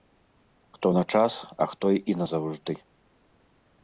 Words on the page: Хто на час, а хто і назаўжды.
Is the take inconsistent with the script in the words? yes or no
no